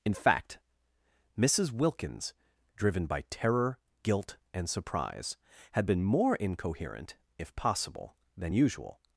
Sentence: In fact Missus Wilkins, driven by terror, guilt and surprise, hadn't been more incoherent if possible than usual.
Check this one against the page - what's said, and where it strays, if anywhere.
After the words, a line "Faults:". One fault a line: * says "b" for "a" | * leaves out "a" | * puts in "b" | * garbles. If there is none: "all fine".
In fact Missus Wilkins, driven by terror, guilt and surprise, had been more incoherent if possible than usual.
Faults:
* says "had" for "hadn't"